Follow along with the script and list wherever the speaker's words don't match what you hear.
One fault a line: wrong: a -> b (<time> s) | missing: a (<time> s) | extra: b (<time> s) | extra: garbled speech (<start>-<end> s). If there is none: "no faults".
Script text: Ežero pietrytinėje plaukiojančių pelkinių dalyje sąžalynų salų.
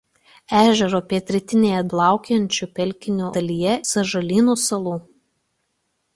no faults